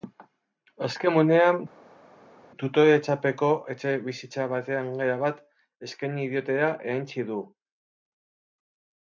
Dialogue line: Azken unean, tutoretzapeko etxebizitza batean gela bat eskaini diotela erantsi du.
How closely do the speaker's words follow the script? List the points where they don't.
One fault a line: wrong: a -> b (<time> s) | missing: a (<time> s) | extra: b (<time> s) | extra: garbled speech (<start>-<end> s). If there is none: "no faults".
no faults